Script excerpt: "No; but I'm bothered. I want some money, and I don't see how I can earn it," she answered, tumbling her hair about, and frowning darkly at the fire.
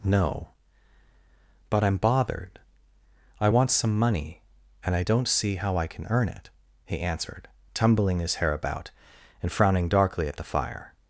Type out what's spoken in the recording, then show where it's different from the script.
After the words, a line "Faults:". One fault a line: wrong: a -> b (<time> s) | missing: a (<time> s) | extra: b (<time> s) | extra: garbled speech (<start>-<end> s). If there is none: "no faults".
"No; but I'm bothered. I want some money, and I don't see how I can earn it," he answered, tumbling his hair about, and frowning darkly at the fire.
Faults:
wrong: she -> he (6.8 s)
wrong: her -> his (8.2 s)